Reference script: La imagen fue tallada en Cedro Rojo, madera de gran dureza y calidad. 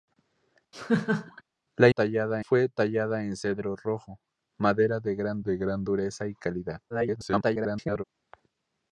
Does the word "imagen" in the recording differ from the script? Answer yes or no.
yes